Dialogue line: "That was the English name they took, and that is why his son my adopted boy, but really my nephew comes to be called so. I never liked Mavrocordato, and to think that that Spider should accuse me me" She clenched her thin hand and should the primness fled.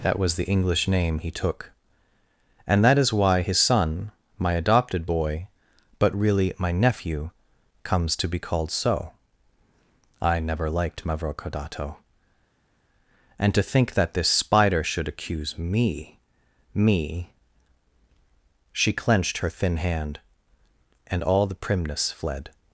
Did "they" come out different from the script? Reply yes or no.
yes